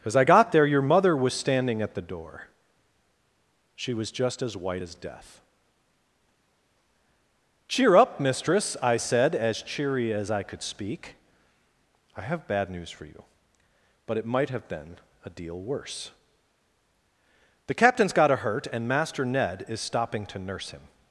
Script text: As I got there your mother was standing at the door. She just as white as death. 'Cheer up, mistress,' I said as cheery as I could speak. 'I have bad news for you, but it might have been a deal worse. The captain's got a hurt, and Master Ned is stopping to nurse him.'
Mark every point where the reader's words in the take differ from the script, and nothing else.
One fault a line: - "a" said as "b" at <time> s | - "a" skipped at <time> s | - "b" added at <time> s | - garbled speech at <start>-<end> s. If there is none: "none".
- "was" added at 3.9 s